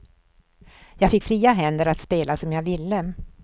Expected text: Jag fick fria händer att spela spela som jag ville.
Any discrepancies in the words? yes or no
yes